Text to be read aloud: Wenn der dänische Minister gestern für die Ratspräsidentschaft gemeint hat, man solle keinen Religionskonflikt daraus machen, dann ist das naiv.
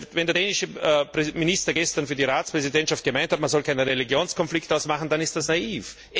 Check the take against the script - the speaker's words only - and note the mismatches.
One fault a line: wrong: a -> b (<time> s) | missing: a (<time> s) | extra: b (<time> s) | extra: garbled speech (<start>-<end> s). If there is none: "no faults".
no faults